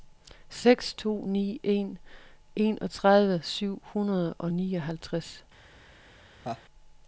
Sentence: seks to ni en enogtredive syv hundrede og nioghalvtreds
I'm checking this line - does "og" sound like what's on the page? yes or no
yes